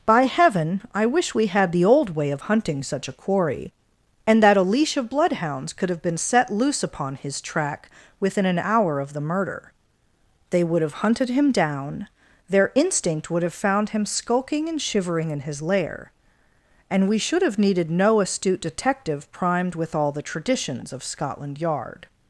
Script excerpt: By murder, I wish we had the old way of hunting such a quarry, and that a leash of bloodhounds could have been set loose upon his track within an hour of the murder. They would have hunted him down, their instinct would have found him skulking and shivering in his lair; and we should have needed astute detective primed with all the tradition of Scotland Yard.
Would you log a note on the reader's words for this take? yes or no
yes